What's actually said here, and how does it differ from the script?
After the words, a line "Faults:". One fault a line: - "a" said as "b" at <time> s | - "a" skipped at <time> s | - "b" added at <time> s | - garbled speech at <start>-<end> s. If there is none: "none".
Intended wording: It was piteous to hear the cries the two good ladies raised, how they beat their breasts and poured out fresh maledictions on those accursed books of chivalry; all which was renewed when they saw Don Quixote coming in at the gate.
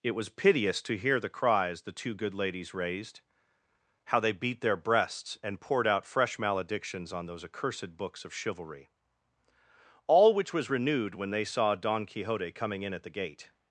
It was piteous to hear the cries the two good ladies raised, how they beat their breasts and poured out fresh maledictions on those accursed books of chivalry; all which was renewed when they saw Don Quixote coming in at the gate.
Faults:
none